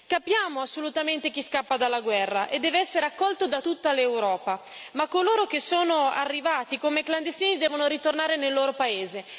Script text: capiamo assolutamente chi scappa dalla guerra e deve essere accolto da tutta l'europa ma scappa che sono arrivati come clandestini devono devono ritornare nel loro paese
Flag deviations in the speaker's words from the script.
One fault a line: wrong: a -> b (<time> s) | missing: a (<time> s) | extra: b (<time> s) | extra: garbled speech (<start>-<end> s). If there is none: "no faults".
wrong: scappa -> coloro (5.1 s)
missing: devono (7.9 s)